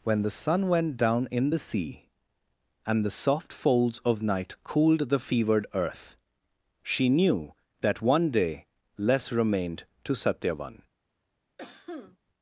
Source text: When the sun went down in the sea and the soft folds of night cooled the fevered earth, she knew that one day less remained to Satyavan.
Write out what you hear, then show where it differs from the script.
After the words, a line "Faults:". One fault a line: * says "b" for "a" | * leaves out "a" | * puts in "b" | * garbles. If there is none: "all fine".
When the sun went down in the sea and the soft folds of night cooled the fevered earth, she knew that one day less remained to Satyavan.
Faults:
all fine